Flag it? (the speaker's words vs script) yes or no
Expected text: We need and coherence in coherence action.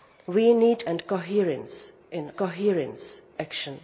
no